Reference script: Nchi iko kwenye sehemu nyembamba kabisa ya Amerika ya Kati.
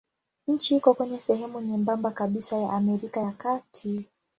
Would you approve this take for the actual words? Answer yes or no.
yes